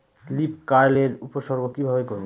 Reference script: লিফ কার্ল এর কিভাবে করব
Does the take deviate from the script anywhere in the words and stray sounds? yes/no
yes